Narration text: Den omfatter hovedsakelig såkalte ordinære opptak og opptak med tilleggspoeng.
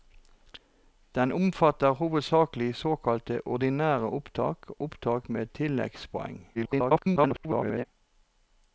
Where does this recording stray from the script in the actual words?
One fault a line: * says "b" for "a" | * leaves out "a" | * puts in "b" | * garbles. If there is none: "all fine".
* leaves out "og"
* garbles